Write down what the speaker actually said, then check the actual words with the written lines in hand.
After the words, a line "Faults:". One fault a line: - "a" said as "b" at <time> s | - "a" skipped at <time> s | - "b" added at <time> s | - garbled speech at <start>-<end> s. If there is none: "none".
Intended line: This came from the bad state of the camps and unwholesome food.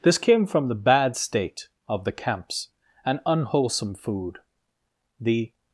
This came from the bad state of the camps and unwholesome food. The
Faults:
- "The" added at 5.2 s